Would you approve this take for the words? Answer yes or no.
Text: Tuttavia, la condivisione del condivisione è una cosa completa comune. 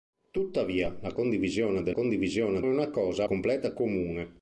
yes